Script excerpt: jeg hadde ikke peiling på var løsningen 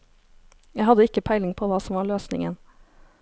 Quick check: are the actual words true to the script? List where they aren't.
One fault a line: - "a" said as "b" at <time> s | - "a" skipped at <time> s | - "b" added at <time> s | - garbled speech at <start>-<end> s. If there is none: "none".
- "hva som" added at 1.7 s